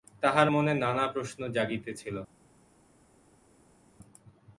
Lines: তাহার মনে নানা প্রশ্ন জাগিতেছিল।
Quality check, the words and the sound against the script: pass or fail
pass